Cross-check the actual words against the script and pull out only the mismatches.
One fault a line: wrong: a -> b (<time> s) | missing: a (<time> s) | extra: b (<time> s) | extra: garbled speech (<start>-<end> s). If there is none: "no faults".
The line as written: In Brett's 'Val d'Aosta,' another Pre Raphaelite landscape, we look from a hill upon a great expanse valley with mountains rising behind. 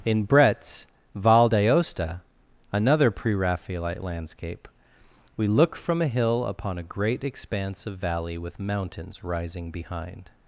extra: of (7.8 s)